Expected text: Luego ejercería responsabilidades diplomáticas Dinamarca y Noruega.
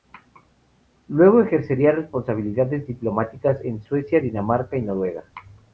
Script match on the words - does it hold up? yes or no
no